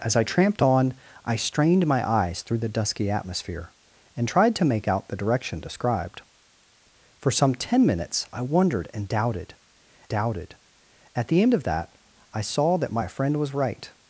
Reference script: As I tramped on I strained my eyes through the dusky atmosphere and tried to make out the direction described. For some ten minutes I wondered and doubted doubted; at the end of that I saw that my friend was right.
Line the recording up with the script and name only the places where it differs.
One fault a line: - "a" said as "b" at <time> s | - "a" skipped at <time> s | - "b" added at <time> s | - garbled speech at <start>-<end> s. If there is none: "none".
none